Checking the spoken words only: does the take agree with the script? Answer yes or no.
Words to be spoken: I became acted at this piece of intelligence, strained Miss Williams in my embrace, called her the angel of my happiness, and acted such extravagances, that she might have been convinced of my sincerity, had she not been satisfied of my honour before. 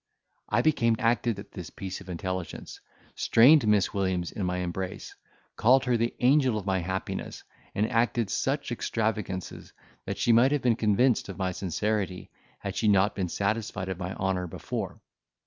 yes